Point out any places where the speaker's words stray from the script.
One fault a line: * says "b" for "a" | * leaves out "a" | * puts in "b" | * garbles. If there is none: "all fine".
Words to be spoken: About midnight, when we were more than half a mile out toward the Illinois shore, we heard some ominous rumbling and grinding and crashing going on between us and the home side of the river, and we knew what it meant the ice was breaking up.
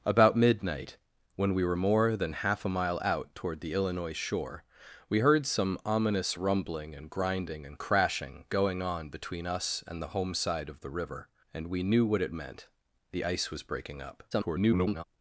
* garbles